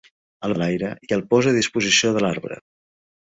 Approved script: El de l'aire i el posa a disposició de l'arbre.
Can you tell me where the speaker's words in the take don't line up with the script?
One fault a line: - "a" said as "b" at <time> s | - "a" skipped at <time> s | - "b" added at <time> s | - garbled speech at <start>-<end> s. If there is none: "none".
none